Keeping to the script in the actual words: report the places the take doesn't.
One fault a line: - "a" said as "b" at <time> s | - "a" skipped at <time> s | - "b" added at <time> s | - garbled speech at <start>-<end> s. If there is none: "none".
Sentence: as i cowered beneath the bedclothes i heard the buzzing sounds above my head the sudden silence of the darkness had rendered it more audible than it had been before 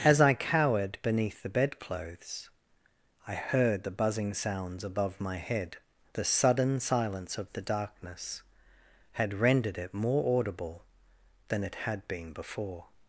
none